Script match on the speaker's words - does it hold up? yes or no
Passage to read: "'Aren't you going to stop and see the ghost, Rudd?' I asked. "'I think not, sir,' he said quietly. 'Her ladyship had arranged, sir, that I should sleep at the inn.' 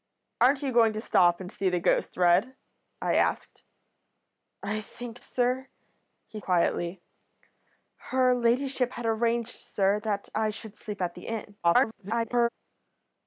no